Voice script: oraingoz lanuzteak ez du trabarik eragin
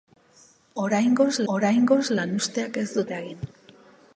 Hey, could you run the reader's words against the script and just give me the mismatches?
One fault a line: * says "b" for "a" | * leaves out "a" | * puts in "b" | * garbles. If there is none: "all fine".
* puts in "oraingoz"
* leaves out "trabarik"